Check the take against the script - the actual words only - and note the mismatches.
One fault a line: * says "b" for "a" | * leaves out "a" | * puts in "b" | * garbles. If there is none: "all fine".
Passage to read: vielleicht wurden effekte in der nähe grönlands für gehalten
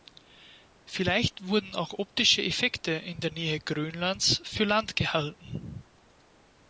* puts in "auch optische"
* puts in "land"